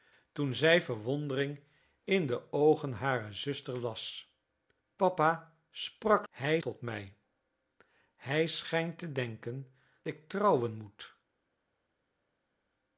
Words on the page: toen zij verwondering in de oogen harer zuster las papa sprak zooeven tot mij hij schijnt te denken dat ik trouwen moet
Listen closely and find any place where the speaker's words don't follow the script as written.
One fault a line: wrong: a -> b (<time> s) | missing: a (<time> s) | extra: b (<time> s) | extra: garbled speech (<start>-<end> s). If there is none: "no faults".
wrong: zooeven -> hij (6.3 s)
missing: dat (9.7 s)